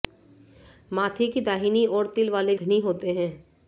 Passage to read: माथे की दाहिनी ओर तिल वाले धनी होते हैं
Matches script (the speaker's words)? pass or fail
pass